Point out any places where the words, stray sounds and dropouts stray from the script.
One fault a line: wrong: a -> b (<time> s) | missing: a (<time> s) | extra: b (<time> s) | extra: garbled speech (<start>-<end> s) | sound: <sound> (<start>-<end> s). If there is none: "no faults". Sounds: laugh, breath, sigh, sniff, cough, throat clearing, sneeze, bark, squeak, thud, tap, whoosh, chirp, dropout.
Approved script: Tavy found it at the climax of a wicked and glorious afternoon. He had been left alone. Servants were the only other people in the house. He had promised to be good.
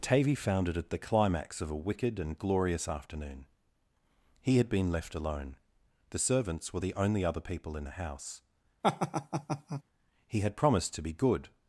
extra: The (6.1 s)
sound: laugh (8.8-9.8 s)